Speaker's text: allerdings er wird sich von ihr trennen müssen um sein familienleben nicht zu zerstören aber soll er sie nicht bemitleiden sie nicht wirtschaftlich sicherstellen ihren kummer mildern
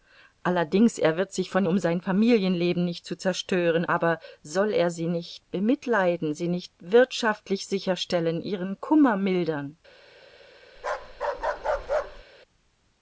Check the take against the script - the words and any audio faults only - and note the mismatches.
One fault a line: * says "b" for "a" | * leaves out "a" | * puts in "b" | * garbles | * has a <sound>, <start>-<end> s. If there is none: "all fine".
* leaves out "ihr trennen müssen"
* has a bark, 10.8-12.2 s